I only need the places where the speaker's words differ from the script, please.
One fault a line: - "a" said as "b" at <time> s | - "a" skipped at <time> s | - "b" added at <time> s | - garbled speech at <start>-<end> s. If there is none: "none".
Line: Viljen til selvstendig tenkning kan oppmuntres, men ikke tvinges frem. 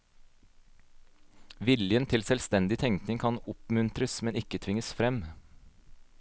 none